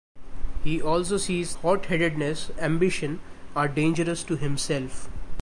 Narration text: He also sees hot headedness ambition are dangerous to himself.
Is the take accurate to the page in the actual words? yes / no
yes